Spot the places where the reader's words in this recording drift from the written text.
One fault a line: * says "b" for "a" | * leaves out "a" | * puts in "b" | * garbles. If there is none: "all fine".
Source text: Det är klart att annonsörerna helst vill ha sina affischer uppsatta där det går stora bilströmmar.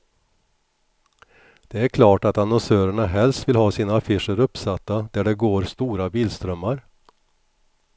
all fine